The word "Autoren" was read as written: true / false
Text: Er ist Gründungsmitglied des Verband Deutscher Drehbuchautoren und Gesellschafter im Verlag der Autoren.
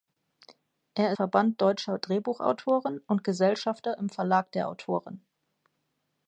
true